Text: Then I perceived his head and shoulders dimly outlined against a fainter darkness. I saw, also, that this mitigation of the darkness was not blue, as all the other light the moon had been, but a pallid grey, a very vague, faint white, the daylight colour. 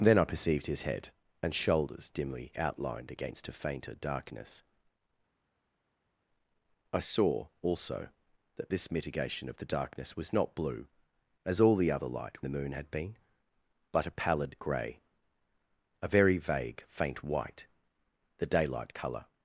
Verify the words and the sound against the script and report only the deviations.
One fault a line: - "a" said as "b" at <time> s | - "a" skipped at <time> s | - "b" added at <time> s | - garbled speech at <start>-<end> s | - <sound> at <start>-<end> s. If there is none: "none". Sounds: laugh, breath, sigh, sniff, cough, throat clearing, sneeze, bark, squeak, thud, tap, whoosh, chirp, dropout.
none